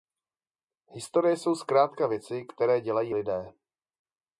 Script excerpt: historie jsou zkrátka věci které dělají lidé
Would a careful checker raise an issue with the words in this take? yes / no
no